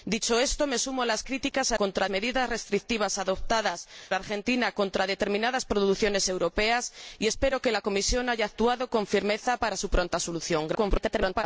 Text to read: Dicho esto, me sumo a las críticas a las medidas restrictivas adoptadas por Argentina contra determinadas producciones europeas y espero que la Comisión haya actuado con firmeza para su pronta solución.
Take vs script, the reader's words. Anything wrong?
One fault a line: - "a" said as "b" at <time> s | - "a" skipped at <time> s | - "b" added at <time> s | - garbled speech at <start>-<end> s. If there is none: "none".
- "las" said as "contra" at 1.7 s
- "por" skipped at 3.9 s
- garbled speech at 10.7-11.4 s